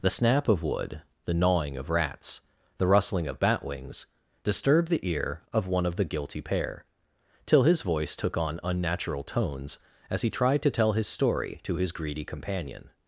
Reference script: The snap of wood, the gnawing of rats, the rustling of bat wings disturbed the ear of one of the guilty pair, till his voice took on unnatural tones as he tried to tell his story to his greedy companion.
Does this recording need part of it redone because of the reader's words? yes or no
no